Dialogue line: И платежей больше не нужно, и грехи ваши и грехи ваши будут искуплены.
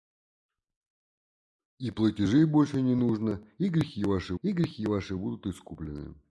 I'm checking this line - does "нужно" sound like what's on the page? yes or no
yes